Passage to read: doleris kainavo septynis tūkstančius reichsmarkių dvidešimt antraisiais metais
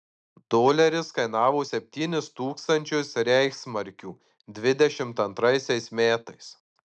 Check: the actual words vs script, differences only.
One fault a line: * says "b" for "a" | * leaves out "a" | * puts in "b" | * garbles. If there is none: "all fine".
all fine